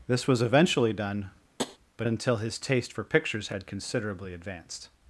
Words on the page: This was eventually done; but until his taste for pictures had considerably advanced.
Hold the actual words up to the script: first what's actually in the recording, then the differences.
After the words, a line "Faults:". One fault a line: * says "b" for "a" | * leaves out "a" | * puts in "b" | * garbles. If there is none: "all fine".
This was eventually done; but until his taste for pictures had considerably advanced.
Faults:
all fine